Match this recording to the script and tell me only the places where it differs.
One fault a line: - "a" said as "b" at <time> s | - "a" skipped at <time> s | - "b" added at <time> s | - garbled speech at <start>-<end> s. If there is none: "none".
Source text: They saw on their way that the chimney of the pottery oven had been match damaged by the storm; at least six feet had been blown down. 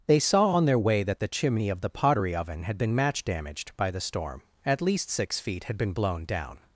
none